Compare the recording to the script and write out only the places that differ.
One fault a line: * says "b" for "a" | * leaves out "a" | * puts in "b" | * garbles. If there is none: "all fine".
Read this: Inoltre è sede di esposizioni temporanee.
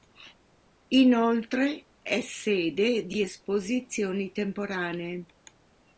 all fine